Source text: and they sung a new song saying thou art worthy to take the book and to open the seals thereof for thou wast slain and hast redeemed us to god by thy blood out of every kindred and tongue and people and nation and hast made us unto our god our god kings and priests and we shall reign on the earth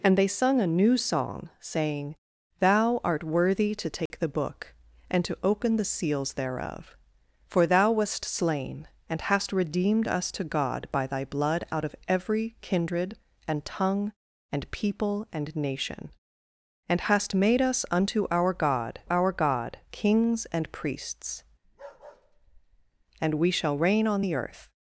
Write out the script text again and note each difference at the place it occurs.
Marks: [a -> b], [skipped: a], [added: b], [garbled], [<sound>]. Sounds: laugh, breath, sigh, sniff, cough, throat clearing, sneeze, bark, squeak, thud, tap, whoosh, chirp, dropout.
and they sung a new song saying thou art worthy to take [dropout] the book and to open the seals thereof for thou wast slain and hast redeemed us to god by thy blood out of every kindred and tongue and people and nation and hast made us unto our god our god kings and priests [bark] and we shall reign on the earth